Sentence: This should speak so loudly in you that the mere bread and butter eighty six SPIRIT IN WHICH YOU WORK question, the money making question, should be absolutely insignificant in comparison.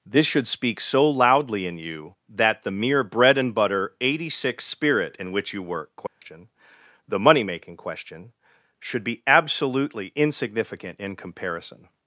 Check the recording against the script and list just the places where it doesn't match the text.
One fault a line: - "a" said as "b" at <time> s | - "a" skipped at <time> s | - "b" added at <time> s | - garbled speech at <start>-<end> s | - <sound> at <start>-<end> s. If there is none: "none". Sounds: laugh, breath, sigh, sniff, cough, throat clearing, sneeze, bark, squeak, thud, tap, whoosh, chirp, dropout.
- dropout at 6.1-6.2 s